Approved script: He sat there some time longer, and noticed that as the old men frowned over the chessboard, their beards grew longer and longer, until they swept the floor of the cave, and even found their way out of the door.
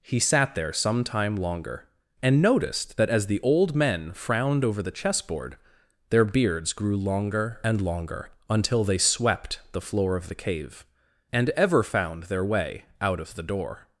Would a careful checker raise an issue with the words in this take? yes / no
yes